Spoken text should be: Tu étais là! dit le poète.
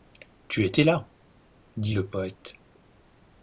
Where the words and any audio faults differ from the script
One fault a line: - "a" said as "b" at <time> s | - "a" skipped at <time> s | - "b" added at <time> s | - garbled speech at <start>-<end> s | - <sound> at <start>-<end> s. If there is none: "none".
none